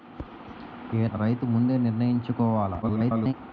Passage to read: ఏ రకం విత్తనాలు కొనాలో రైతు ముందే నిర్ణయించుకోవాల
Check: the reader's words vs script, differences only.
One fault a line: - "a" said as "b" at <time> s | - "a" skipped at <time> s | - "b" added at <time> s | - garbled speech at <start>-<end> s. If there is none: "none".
- "రకం విత్తనాలు కొనాలో" skipped at 1.1 s
- garbled speech at 2.8-3.3 s